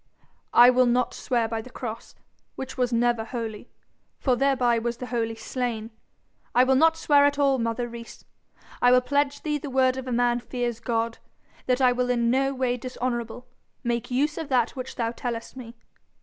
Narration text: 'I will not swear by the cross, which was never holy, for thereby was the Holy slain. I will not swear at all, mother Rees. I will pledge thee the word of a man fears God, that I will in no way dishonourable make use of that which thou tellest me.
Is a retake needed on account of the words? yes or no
no